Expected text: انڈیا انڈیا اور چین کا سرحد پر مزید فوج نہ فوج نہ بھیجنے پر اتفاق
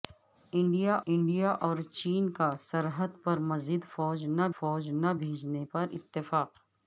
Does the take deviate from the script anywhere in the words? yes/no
no